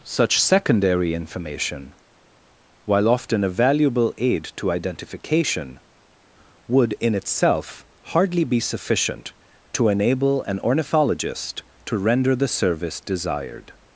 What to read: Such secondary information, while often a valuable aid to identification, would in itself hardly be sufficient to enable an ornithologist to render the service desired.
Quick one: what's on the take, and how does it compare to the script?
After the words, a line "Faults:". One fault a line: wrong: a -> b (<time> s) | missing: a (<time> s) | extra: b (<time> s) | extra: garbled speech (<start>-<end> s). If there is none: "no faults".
Such secondary information, while often a valuable aid to identification, would in itself hardly be sufficient to enable an ornithologist to render the service desired.
Faults:
no faults